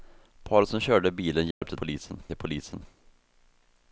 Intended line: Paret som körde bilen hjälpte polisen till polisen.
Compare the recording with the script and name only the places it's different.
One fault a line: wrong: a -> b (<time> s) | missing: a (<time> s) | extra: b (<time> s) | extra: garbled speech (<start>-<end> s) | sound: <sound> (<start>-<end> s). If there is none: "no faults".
sound: dropout (1.5-1.6 s)